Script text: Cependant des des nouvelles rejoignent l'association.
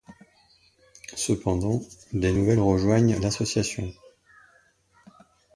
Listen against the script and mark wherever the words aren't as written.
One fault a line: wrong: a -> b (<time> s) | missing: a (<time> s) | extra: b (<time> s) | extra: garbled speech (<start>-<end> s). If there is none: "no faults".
missing: des (2.3 s)